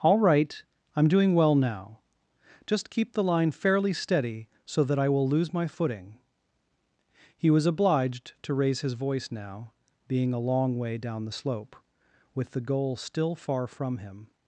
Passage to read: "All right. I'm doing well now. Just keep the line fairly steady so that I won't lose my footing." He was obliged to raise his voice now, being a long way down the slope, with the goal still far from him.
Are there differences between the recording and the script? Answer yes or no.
yes